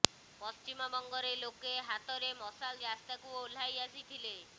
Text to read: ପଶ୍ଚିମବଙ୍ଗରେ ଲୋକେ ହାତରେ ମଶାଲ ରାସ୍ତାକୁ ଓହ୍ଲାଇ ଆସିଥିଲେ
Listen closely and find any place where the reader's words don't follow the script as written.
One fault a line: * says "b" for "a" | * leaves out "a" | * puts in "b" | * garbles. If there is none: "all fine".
all fine